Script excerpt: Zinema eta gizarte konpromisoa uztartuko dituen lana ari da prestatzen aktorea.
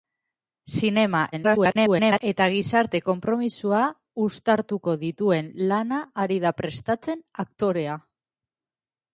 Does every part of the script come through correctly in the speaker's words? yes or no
no